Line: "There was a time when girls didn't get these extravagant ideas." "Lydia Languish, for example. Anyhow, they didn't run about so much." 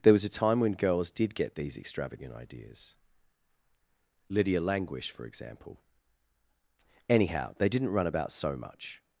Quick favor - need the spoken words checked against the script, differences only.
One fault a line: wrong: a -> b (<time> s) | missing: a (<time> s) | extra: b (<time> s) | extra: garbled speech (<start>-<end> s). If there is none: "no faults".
wrong: didn't -> did (1.1 s)